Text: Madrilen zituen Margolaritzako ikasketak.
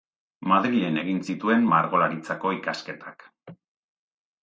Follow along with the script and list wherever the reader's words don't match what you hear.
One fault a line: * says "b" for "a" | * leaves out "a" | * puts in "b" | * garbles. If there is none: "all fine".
* puts in "egin"